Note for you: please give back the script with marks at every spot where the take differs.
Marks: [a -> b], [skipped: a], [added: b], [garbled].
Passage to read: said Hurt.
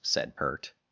said Hurt.